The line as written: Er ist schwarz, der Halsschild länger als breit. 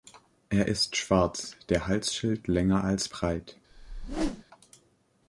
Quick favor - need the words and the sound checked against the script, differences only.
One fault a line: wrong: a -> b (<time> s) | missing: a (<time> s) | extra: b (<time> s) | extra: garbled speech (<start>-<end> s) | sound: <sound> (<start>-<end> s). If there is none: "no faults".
sound: whoosh (3.7-4.4 s)